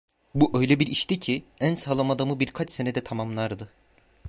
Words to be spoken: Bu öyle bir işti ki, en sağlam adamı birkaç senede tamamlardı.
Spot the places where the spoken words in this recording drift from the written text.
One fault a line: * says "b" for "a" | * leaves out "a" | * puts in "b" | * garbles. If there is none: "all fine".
all fine